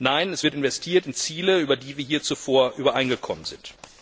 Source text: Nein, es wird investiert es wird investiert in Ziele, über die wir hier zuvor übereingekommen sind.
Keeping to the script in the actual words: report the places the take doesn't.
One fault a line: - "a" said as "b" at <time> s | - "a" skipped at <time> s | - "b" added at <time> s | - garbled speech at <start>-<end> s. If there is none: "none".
- "es wird investiert" skipped at 1.1 s